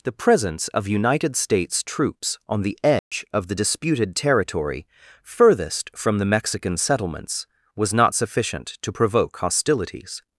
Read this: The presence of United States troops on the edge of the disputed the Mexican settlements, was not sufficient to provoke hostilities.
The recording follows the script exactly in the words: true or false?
false